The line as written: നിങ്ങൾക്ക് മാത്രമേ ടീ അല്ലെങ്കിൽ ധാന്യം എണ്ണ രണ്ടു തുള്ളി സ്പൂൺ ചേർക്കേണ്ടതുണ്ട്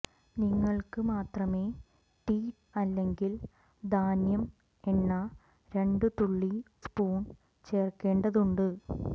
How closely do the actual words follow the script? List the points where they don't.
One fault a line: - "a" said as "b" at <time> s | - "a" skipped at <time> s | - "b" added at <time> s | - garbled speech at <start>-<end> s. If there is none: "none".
none